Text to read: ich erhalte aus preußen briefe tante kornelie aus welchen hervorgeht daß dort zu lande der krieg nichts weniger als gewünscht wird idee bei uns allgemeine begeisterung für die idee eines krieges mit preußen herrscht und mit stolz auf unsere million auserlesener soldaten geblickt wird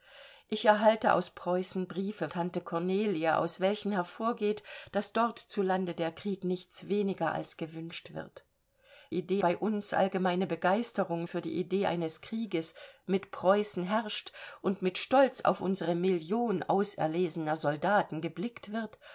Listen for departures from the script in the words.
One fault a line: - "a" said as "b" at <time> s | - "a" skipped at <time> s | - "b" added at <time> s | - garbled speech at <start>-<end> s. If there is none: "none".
none